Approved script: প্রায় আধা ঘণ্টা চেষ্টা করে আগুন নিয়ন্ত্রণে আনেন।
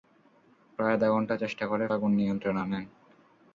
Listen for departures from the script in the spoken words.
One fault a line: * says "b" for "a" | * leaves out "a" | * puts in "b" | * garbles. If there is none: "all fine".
all fine